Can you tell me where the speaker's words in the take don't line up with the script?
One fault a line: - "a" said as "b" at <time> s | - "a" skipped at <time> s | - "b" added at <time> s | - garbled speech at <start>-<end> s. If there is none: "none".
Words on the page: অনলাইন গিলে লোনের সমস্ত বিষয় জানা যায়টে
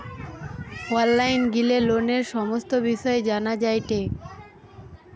none